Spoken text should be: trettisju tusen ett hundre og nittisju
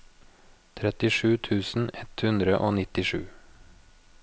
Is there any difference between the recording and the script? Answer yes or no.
no